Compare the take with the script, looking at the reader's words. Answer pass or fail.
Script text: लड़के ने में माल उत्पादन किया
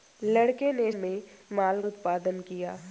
pass